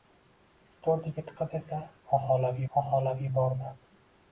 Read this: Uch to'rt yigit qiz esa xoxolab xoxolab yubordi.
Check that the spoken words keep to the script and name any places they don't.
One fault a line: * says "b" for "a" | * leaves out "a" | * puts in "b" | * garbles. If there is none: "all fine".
all fine